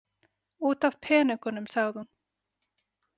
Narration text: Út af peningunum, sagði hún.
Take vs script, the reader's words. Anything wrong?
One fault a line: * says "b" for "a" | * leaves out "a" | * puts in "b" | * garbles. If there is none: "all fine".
all fine